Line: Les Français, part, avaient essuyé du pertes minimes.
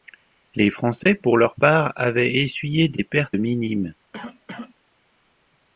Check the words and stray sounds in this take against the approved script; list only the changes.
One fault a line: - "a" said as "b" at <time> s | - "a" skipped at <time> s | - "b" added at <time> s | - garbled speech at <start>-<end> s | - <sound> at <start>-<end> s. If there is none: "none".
- "pour leur" added at 1.1 s
- "du" said as "des" at 2.9 s
- cough at 4.1-4.7 s